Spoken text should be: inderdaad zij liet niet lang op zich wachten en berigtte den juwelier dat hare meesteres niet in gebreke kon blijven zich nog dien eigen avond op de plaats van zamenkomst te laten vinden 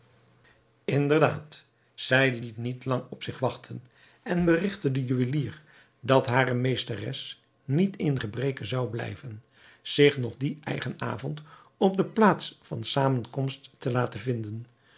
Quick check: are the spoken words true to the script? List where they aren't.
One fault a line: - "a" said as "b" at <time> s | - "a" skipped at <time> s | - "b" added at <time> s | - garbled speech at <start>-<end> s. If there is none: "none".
- "kon" said as "zou" at 8.6 s